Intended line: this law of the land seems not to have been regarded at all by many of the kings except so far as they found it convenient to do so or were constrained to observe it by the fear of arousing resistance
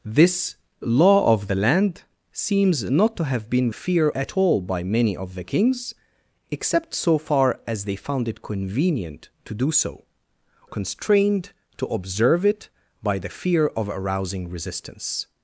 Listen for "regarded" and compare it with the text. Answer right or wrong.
wrong